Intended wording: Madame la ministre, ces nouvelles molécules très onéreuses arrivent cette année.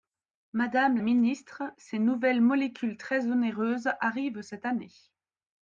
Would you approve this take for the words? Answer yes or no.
no